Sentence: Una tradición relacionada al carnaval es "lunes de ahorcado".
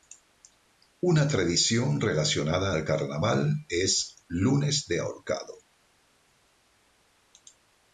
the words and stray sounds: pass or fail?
pass